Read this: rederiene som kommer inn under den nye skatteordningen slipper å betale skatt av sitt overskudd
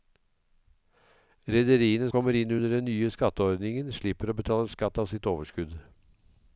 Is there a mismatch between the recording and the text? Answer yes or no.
yes